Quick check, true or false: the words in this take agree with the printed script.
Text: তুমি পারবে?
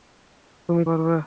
true